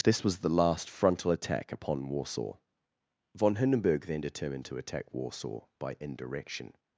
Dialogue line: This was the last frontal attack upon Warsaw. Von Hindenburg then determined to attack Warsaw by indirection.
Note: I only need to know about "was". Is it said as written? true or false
true